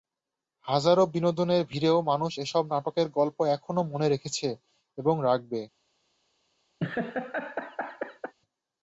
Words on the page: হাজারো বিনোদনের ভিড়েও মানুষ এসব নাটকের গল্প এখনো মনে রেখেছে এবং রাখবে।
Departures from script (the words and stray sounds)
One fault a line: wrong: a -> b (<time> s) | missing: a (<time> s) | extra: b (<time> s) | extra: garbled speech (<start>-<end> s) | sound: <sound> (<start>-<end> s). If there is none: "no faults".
sound: laugh (6.8-8.3 s)